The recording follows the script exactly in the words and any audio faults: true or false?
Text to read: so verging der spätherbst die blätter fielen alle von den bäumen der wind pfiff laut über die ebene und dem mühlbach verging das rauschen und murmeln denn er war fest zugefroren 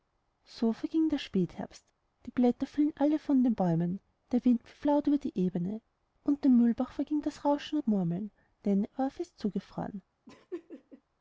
false